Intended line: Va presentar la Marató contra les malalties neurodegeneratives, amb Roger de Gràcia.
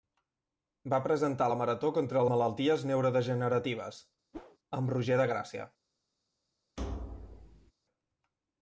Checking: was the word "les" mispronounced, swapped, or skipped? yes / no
yes